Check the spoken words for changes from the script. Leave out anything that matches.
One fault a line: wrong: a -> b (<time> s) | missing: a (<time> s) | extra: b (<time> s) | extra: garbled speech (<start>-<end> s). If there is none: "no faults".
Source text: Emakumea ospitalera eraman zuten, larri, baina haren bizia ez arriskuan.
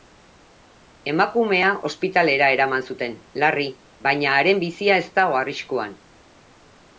extra: dago (5.2 s)